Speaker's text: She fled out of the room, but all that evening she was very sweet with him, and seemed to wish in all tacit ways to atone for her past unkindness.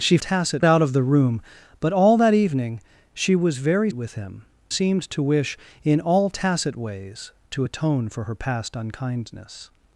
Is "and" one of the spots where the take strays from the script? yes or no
yes